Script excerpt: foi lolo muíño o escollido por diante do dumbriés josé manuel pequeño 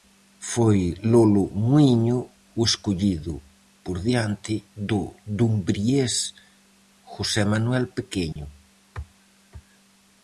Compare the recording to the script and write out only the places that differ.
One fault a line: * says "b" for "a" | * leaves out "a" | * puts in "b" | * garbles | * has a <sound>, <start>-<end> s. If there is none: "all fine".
* has a dropout, 8.3-8.4 s